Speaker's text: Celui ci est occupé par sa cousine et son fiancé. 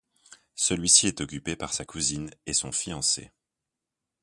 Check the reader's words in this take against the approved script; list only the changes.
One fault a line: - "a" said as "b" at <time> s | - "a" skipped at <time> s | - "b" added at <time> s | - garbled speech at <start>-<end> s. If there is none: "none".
none